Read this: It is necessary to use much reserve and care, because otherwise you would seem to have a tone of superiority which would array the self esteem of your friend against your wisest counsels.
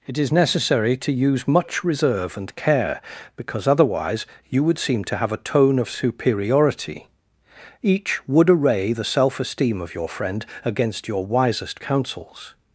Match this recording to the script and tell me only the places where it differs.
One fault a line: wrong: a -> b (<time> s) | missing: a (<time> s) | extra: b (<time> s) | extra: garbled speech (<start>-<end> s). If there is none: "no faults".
wrong: which -> each (7.8 s)